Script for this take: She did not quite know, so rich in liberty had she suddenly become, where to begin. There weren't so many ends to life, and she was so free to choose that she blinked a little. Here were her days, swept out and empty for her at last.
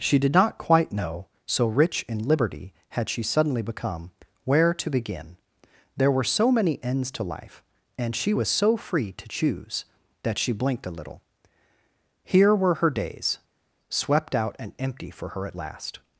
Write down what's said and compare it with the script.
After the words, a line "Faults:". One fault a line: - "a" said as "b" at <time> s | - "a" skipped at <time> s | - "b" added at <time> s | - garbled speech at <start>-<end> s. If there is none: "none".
She did not quite know, so rich in liberty had she suddenly become, where to begin. There were so many ends to life, and she was so free to choose that she blinked a little. Here were her days, swept out and empty for her at last.
Faults:
- "weren't" said as "were" at 6.1 s